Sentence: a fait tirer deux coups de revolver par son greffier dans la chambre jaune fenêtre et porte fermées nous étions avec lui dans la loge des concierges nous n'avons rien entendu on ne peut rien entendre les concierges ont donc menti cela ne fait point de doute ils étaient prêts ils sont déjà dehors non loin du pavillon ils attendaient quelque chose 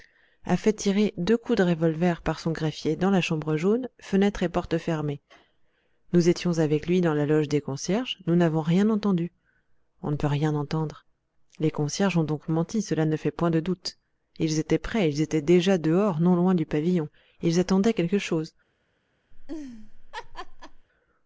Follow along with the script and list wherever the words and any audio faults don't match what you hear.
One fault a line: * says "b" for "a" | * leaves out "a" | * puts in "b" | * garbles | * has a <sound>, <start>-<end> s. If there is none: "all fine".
* says "étaient" for "sont"
* has a laugh, 19.3-20.9 s